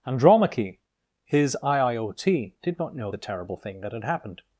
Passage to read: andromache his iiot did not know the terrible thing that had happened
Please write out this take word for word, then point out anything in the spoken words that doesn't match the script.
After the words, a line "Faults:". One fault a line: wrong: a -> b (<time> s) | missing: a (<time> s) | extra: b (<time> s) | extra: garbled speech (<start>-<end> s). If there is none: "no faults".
andromache his iiot did not know the terrible thing that had happened
Faults:
no faults